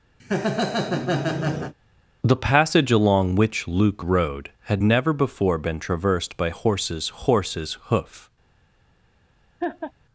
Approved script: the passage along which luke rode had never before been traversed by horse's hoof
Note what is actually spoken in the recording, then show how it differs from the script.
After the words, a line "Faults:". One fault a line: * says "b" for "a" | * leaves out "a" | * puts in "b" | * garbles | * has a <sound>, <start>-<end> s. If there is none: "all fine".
the passage along which luke rode had never before been traversed by horse's horse's hoof
Faults:
* has a laugh, 0.2-1.7 s
* puts in "horse's"
* has a laugh, 9.6-9.9 s